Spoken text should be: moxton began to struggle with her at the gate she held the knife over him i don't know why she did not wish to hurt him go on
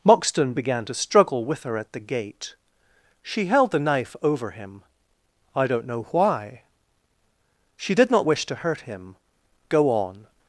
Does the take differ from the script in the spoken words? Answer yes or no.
no